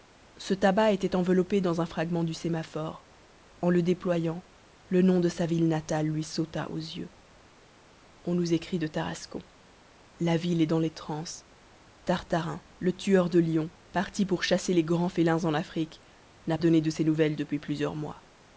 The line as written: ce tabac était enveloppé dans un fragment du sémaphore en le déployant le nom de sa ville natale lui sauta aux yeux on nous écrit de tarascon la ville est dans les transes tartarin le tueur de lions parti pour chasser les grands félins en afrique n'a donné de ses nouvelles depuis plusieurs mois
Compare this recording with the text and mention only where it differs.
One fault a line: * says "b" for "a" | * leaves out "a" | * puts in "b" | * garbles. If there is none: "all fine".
all fine